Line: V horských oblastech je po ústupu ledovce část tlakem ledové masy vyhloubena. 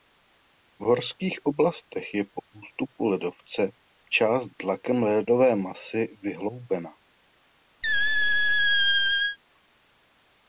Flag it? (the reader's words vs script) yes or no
no